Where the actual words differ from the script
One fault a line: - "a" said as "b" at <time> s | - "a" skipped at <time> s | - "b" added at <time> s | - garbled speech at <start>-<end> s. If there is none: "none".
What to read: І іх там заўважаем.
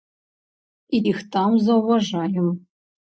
none